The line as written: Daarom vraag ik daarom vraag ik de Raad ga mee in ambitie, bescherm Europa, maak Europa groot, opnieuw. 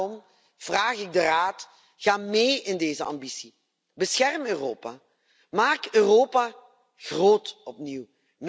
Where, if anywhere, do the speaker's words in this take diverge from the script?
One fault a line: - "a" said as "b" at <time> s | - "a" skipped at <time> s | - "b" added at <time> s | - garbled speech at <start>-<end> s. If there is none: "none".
- "daarom vraag ik" skipped at 1.1 s
- "deze" added at 2.8 s